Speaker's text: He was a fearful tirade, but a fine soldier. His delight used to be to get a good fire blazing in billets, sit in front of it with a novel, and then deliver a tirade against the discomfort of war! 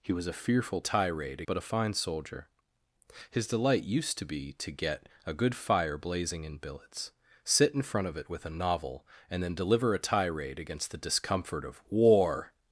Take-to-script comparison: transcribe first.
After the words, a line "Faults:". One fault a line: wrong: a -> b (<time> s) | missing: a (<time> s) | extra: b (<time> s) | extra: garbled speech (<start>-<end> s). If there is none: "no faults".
He was a fearful tirade, but a fine soldier. His delight used to be to get a good fire blazing in billets, sit in front of it with a novel, and then deliver a tirade against the discomfort of war!
Faults:
no faults